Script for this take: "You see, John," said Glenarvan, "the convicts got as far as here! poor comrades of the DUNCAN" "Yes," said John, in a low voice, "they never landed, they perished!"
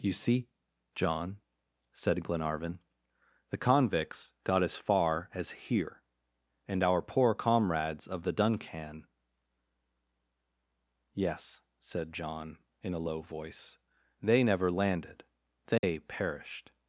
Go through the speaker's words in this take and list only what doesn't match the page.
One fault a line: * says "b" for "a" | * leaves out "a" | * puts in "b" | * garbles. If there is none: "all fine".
* puts in "and our"